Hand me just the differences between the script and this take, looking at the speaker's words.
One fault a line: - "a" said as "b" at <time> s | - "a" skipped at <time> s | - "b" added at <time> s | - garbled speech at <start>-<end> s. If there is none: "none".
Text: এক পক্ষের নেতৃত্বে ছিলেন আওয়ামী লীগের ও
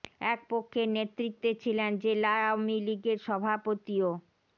- "জেলা" added at 2.0 s
- "সভাপতি" added at 3.3 s